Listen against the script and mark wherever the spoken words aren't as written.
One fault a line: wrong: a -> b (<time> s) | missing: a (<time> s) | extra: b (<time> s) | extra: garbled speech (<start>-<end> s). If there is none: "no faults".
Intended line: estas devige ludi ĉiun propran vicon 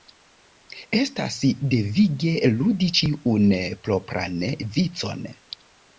no faults